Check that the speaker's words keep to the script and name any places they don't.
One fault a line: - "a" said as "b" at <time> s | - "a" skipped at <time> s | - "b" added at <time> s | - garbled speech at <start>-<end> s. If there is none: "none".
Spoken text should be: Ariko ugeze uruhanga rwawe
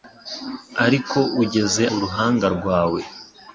none